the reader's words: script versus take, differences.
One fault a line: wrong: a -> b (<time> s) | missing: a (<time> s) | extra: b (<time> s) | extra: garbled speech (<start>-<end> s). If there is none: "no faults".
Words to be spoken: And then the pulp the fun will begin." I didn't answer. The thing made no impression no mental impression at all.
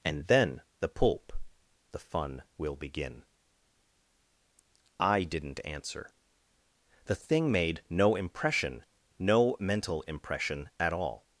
no faults